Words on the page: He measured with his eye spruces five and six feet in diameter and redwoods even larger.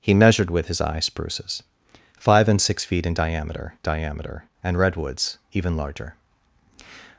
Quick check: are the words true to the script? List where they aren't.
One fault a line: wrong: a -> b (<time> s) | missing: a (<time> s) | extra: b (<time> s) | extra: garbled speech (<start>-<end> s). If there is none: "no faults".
extra: diameter (3.8 s)